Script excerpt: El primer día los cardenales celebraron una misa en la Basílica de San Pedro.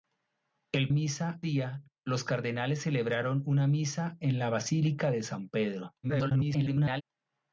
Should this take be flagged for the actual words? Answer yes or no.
yes